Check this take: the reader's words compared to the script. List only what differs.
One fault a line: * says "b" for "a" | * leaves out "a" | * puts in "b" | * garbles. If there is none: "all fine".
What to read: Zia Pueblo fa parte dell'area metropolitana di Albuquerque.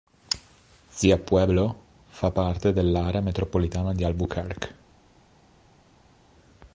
all fine